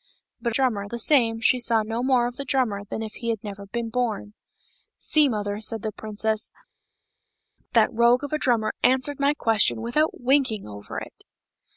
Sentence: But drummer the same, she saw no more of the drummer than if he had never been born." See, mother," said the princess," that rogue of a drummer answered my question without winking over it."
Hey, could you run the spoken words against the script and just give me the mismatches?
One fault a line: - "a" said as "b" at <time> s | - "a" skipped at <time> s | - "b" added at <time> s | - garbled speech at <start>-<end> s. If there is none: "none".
none